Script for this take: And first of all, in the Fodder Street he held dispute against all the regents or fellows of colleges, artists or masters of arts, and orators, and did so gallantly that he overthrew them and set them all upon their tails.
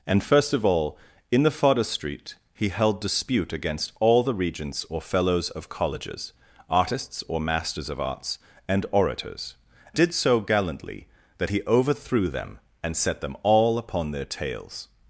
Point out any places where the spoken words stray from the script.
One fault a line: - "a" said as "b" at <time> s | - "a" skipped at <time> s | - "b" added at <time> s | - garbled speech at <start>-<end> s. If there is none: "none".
- "and" skipped at 9.6 s